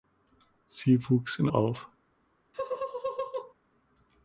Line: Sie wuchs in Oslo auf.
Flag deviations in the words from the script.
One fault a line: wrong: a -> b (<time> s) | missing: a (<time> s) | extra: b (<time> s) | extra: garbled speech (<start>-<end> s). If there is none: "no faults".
missing: Oslo (1.5 s)